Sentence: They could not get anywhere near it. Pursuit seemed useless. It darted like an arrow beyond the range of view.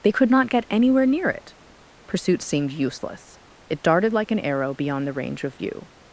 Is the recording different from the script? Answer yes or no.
no